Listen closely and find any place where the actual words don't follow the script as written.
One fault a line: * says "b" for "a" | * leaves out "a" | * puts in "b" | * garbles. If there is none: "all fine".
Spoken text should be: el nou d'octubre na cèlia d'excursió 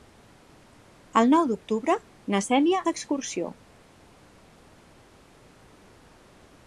all fine